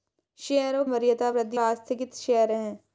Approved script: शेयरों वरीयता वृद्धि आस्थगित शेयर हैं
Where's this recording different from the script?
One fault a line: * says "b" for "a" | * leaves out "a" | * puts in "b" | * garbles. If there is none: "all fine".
all fine